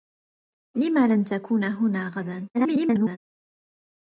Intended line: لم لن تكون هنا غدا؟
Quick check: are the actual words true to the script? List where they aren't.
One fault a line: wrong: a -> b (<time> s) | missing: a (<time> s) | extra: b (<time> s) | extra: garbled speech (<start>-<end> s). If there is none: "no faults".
extra: garbled speech (2.5-3.2 s)